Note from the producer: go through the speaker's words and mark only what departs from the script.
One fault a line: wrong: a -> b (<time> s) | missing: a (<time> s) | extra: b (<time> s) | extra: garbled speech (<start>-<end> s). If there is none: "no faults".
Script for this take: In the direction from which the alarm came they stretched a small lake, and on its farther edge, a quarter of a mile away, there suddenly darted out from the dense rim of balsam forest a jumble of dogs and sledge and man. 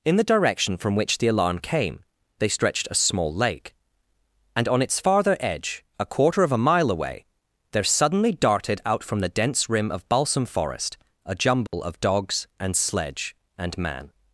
no faults